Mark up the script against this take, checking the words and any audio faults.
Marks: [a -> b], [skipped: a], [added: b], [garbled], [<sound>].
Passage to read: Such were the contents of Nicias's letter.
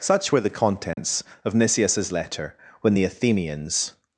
Such were the contents [dropout] of Nicias's letter. [added: When the Athenians]